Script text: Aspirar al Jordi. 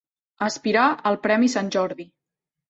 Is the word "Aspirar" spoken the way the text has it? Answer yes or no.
yes